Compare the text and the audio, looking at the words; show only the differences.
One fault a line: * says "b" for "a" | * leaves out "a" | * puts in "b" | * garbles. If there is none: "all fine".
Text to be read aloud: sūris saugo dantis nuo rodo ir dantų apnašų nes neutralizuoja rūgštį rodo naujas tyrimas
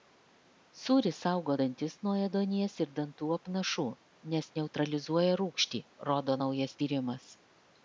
* says "ėduonies" for "rodo"